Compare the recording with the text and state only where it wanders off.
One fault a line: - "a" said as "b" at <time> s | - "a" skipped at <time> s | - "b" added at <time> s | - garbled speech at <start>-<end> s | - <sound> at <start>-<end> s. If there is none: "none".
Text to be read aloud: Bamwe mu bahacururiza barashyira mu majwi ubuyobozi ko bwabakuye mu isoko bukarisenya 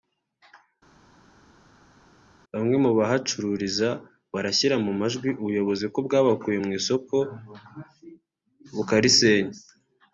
none